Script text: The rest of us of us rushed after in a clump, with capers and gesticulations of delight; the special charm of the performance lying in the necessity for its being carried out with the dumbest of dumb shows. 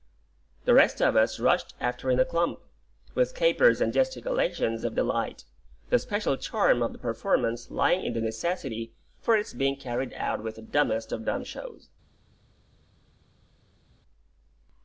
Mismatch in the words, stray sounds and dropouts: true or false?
true